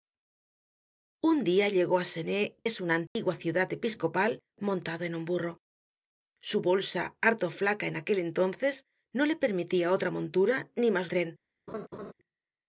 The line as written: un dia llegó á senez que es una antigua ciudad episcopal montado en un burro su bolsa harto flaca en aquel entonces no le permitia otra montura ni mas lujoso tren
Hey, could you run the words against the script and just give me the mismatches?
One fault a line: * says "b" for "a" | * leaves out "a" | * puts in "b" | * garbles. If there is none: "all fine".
* leaves out "que"
* leaves out "lujoso"